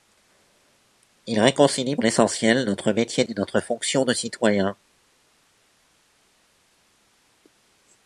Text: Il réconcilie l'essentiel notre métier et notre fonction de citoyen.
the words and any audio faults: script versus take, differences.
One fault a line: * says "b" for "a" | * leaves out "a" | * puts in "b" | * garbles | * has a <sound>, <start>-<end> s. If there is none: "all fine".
all fine